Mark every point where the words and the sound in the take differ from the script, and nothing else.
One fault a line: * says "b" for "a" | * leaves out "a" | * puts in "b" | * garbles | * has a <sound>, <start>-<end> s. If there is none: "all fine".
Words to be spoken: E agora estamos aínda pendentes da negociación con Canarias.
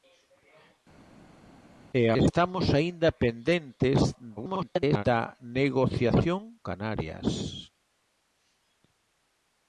* leaves out "agora"
* garbles
* leaves out "con"